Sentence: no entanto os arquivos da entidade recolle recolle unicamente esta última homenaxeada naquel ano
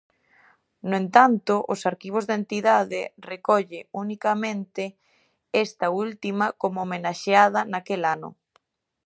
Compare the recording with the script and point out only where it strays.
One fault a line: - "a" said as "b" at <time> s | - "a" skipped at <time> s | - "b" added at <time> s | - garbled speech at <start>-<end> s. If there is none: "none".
- "recolle" skipped at 3.8 s
- "como" added at 6.6 s